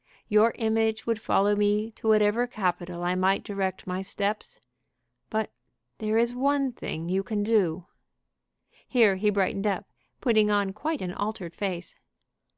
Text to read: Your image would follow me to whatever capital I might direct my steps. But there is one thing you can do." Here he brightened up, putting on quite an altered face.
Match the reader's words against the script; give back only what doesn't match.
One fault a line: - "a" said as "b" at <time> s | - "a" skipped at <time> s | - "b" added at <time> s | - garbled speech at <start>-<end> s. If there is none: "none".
none